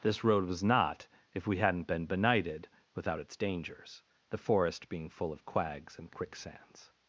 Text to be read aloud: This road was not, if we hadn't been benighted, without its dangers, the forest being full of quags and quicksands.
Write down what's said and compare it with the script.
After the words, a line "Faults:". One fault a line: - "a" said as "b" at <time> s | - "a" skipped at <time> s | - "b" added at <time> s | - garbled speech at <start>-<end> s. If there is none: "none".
This road was not, if we hadn't been benighted, without its dangers, the forest being full of quags and quicksands.
Faults:
none